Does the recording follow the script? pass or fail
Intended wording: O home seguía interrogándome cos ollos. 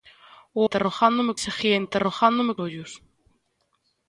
fail